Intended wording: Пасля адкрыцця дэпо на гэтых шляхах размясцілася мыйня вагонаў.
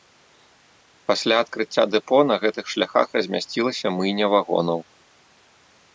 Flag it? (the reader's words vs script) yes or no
no